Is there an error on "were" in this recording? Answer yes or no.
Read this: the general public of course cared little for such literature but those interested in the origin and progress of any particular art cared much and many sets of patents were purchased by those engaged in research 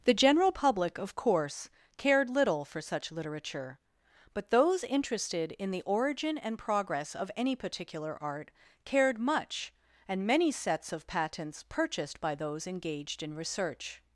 yes